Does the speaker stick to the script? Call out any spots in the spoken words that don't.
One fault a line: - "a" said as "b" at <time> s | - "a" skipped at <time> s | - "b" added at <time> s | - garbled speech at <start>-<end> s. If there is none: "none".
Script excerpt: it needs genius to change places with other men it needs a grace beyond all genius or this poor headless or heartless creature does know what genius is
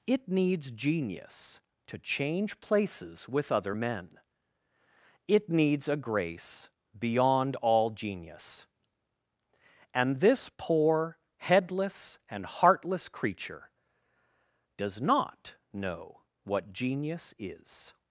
- "or" said as "and" at 9.9 s
- "or" said as "and" at 12.3 s
- "not" added at 15.0 s